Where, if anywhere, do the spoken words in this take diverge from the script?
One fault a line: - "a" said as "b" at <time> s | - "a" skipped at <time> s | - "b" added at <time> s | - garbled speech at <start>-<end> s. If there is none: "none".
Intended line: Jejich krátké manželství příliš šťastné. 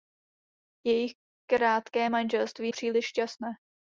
none